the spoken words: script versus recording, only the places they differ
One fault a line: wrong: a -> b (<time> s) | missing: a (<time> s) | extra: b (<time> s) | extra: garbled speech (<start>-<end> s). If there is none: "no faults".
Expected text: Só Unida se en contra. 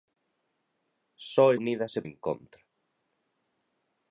no faults